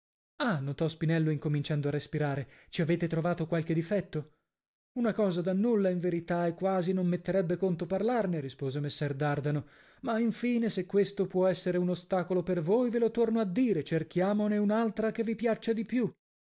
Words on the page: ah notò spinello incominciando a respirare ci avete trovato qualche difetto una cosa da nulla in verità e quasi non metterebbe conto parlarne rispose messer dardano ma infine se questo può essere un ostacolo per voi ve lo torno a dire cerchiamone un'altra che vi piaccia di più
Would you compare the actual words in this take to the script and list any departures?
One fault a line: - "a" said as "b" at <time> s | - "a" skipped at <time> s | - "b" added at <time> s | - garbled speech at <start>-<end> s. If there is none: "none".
none